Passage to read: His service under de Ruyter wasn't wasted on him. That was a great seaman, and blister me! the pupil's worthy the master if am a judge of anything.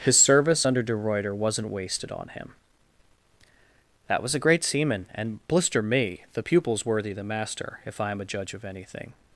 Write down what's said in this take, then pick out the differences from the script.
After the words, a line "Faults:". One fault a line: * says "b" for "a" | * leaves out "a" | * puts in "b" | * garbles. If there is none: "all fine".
His service under de Ruyter wasn't wasted on him. That was a great seaman, and blister me! the pupil's worthy the master if I am a judge of anything.
Faults:
* puts in "I"